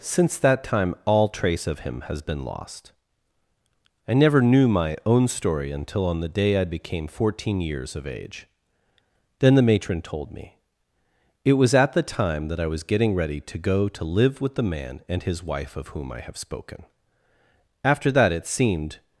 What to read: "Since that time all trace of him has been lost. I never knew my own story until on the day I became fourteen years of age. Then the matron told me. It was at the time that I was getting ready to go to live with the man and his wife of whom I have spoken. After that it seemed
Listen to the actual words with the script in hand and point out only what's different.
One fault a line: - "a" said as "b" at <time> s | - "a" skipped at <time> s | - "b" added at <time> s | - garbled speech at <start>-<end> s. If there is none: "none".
none